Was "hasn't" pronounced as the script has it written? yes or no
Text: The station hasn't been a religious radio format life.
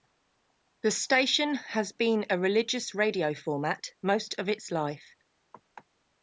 no